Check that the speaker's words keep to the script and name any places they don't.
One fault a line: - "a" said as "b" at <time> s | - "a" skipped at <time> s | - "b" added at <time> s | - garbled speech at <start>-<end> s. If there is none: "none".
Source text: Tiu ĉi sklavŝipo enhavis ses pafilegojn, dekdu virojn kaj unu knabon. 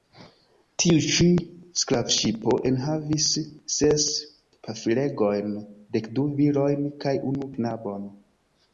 none